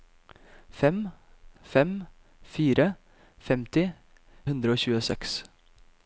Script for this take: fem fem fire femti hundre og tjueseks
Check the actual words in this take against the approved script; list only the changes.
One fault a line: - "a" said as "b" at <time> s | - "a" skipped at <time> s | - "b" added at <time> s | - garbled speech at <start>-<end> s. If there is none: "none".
none